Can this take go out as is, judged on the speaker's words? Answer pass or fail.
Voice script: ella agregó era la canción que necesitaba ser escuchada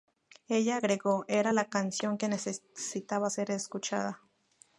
pass